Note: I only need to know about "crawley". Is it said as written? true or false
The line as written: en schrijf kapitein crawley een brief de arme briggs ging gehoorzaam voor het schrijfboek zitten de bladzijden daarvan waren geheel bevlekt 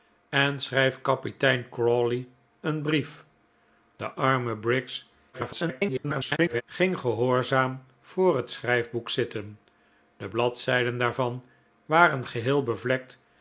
true